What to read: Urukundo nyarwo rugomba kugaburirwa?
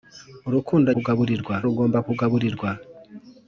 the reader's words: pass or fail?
fail